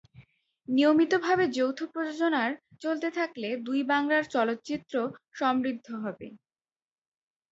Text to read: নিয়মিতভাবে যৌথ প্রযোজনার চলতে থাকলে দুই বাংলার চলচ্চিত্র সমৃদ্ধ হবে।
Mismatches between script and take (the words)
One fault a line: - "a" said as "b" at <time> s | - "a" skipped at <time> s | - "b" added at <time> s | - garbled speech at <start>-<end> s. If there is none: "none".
none